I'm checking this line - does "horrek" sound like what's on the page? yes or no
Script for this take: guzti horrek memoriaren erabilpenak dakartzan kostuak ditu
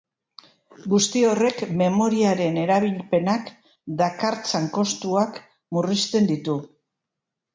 yes